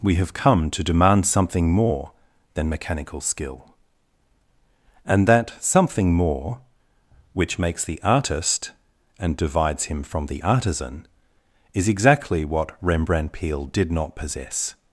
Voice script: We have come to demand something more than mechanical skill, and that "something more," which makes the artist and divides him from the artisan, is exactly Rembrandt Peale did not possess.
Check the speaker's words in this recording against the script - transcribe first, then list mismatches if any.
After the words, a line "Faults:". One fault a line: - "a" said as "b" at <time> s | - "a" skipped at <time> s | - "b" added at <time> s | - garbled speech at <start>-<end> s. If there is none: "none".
We have come to demand something more than mechanical skill, and that "something more," which makes the artist and divides him from the artisan, is exactly what Rembrandt Peale did not possess.
Faults:
- "what" added at 12.4 s